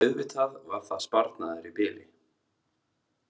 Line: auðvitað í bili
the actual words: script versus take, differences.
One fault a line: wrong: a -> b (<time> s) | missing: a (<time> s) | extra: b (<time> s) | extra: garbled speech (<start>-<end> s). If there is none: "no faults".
extra: var það sparnaður (0.7 s)